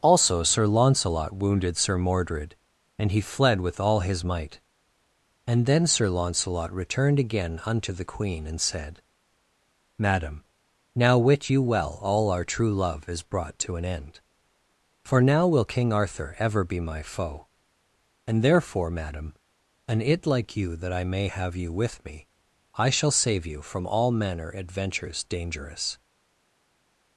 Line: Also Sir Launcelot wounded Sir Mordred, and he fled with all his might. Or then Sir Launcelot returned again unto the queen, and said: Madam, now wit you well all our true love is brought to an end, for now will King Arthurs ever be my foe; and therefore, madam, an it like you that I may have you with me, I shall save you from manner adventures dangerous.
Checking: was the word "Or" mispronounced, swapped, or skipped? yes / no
yes